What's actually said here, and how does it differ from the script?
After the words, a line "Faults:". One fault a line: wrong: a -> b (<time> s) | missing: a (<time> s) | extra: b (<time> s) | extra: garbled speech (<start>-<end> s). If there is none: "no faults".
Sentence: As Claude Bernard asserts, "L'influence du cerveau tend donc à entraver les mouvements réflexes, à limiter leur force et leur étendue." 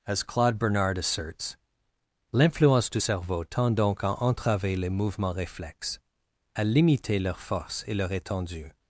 As Claude Bernard asserts, "L'influence du cerveau tend donc à entraver les mouvements réflexes, à limiter leur force et leur étendue."
Faults:
no faults